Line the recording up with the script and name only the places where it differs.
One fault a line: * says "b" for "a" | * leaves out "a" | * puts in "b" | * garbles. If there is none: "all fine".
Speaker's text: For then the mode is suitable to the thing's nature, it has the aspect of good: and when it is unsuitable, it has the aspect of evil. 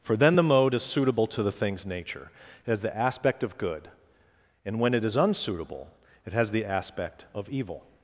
all fine